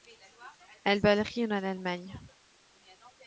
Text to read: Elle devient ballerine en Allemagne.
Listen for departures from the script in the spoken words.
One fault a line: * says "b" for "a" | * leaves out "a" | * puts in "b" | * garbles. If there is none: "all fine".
* leaves out "devient"